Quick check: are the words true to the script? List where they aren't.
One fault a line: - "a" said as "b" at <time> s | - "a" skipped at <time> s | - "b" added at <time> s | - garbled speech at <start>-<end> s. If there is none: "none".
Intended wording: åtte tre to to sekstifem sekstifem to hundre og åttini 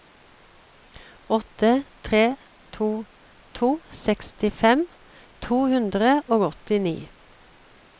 - "sekstifem" skipped at 4.8 s